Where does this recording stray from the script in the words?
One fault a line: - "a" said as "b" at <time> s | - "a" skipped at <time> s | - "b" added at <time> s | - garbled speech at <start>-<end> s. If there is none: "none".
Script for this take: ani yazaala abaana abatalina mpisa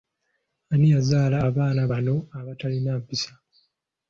- "bano" added at 1.9 s